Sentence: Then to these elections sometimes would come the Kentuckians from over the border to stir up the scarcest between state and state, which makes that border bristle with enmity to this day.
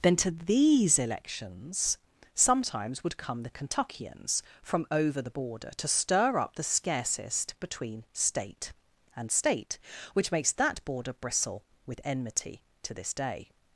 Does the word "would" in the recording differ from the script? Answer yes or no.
no